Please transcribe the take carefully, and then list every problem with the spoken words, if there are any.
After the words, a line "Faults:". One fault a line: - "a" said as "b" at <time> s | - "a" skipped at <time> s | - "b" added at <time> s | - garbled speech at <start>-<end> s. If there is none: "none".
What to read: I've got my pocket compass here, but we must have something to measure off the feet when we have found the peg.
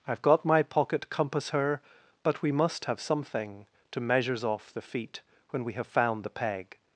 I've got my pocket compass her, but we must have something to measures off the feet when we have found the peg.
Faults:
- "here" said as "her" at 1.5 s
- "measure" said as "measures" at 4.0 s